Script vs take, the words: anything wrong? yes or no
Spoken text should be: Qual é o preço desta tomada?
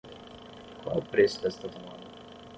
no